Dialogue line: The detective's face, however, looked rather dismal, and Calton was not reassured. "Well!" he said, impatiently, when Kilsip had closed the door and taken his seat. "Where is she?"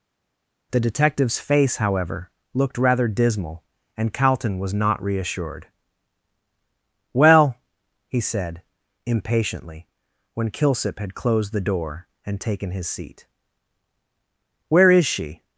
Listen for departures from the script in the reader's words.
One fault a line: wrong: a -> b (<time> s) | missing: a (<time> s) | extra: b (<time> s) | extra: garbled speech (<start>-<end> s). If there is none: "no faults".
no faults